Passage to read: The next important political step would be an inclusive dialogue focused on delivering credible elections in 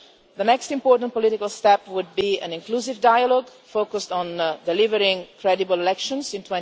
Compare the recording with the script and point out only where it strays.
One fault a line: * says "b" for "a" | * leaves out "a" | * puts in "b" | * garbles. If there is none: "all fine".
all fine